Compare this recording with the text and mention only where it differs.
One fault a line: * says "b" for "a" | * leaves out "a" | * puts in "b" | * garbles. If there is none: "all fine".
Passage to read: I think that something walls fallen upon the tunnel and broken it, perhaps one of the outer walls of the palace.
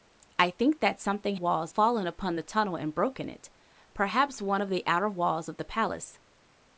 all fine